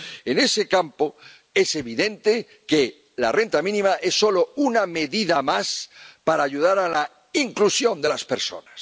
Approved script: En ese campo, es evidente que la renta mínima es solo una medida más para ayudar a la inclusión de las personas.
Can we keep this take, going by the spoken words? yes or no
yes